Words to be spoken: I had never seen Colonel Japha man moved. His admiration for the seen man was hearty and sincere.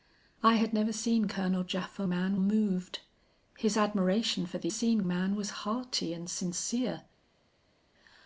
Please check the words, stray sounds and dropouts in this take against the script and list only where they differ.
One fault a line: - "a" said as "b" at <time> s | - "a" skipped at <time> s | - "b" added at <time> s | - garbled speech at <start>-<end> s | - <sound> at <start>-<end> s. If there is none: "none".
none